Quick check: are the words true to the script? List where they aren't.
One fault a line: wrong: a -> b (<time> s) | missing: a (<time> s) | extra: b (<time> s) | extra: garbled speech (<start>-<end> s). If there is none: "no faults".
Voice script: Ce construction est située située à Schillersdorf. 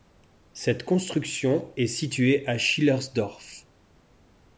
wrong: Ce -> Cette (0.5 s)
missing: située (2.5 s)